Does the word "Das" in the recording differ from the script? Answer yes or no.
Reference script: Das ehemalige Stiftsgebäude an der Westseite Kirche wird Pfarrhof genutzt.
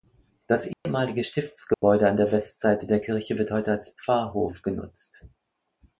no